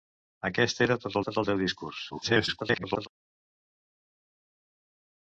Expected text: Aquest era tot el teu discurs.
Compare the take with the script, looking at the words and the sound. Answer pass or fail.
fail